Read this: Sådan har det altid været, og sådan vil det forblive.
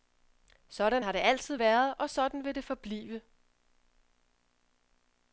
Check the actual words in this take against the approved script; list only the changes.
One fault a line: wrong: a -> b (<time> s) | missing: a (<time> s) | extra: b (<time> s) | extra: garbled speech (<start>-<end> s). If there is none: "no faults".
no faults